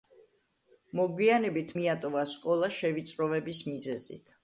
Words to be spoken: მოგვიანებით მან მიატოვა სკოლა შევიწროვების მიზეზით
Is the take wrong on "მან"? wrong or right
wrong